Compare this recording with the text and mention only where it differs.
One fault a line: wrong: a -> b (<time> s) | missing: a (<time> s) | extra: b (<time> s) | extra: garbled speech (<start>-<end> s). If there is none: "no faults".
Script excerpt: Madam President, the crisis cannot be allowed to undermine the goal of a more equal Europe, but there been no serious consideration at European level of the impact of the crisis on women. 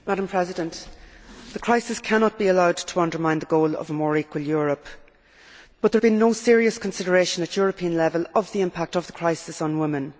no faults